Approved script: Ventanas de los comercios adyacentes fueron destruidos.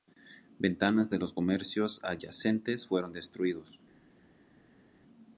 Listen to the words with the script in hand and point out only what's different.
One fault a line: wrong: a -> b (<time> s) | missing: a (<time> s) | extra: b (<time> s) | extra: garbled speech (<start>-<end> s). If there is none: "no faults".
no faults